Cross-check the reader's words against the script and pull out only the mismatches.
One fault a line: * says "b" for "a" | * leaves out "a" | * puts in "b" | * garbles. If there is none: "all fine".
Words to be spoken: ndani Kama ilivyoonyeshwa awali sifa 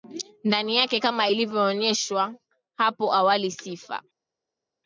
* puts in "yake"
* puts in "hapo"